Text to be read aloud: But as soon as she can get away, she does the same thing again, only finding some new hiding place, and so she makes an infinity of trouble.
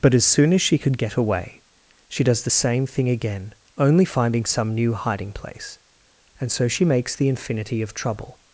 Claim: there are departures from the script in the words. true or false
true